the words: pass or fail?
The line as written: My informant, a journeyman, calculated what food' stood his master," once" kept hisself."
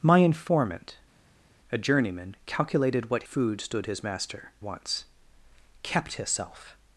pass